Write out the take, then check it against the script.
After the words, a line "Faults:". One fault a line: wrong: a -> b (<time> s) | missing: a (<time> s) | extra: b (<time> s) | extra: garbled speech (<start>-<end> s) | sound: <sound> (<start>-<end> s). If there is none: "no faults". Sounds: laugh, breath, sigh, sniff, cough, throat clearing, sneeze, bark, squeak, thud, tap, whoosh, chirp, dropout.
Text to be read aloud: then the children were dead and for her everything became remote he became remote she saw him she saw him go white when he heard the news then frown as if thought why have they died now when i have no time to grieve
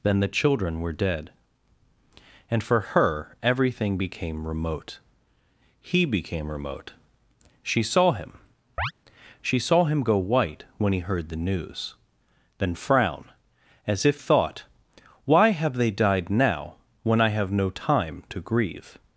then the children were dead and for her everything became remote he became remote she saw him she saw him go white when he heard the news then frown as if thought why have they died now when i have no time to grieve
Faults:
sound: chirp (8.8-8.9 s)